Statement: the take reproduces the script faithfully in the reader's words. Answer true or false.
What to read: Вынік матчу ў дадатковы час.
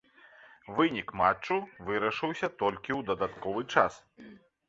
false